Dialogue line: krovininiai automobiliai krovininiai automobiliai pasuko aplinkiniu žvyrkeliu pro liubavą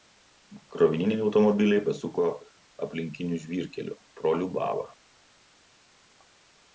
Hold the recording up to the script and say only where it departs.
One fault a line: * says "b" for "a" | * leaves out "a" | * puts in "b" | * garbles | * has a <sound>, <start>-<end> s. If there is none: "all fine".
* leaves out "krovininiai automobiliai"